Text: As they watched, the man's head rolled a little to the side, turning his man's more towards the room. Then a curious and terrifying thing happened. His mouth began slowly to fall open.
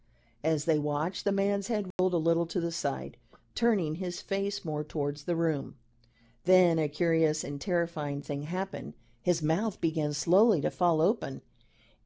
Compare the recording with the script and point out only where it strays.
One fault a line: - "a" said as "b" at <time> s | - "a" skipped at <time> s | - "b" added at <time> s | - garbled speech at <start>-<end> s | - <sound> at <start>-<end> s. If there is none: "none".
- dropout at 1.9-2.0 s
- "man's" said as "face" at 4.2 s